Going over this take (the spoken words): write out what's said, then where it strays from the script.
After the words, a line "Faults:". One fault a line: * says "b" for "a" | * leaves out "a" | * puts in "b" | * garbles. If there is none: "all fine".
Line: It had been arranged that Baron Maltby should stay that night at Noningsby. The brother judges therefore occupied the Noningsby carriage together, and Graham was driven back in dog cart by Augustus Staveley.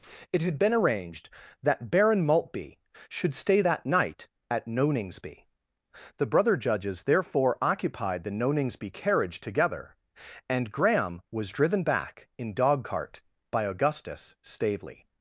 It had been arranged that Baron Maltby should stay that night at Noningsby. The brother judges therefore occupied the Noningsby carriage together, and Graham was driven back in dog cart by Augustus Staveley.
Faults:
all fine